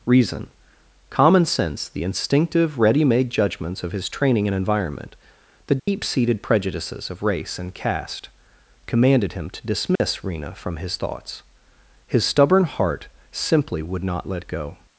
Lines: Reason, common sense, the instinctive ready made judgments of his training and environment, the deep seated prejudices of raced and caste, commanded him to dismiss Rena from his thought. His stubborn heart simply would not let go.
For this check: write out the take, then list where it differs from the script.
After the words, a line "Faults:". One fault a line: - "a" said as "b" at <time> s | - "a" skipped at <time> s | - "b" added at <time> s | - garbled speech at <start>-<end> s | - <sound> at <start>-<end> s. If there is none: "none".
Reason, common sense, the instinctive ready made judgments of his training and environment, the deep seated prejudices of race and caste, commanded him to dismiss Rena from his thoughts. His stubborn heart simply would not let go.
Faults:
- dropout at 5.8-5.9 s
- "raced" said as "race" at 7.2 s
- dropout at 10.0-10.0 s
- "thought" said as "thoughts" at 11.0 s